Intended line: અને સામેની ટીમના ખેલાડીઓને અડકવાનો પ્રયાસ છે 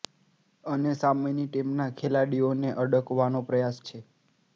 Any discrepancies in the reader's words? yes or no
no